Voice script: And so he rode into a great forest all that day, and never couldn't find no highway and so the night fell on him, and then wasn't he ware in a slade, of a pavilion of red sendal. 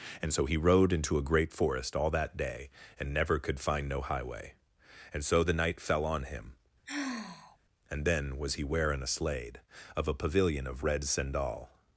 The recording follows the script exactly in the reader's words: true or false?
false